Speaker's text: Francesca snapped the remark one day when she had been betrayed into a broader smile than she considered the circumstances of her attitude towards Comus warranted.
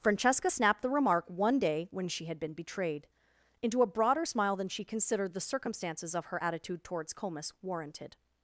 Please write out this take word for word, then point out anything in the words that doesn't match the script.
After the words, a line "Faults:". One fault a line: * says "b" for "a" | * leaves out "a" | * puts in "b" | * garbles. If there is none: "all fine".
Francesca snapped the remark one day when she had been betrayed into a broader smile than she considered the circumstances of her attitude towards Comus warranted.
Faults:
all fine